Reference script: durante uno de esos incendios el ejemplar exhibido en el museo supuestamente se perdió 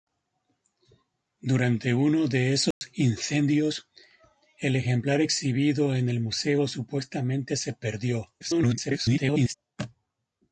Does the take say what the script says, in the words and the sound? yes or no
no